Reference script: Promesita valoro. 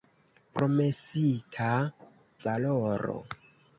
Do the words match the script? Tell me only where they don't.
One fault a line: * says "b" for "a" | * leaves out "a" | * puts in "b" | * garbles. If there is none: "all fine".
all fine